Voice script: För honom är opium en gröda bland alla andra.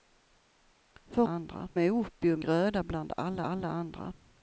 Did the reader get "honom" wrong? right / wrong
wrong